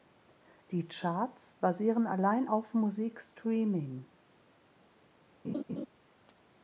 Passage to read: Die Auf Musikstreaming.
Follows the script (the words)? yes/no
no